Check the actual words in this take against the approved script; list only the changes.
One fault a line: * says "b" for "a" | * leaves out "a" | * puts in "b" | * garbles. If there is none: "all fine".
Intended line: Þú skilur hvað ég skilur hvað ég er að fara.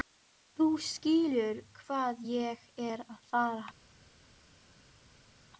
* leaves out "skilur hvað ég"